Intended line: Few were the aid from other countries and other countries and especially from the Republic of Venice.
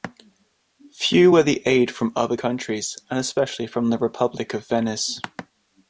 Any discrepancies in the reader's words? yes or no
yes